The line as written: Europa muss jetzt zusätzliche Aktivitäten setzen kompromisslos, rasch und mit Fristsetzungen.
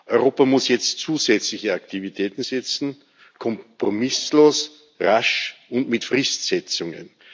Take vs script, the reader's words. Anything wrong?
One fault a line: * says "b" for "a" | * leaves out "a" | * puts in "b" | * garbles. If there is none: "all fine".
all fine